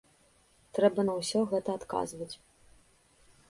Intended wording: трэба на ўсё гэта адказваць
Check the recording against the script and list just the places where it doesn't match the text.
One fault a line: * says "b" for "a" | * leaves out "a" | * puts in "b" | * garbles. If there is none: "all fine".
all fine